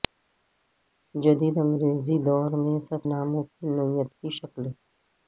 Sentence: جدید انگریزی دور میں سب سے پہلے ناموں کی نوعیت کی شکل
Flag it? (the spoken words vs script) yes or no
yes